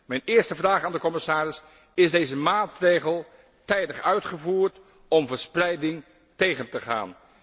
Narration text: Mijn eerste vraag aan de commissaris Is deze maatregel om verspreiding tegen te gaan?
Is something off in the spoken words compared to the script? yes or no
yes